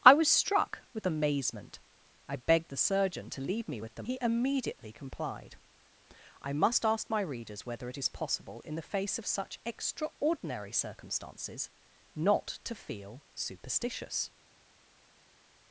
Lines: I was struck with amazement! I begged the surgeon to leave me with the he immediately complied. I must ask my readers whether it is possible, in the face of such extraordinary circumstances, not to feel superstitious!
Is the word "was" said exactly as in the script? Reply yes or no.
yes